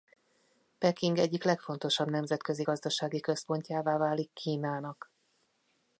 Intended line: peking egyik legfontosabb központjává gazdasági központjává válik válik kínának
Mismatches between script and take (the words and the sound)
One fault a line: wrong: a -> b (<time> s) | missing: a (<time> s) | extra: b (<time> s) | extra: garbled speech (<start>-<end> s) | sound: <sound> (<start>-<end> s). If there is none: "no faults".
wrong: központjává -> nemzetközi (2.1 s)
missing: válik (4.3 s)